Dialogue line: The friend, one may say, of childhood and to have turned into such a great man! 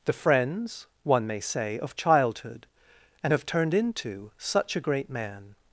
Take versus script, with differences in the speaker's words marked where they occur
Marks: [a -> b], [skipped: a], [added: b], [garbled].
The [friend, -> friends] one may say, of childhood and [skipped: to] have turned into such a great man!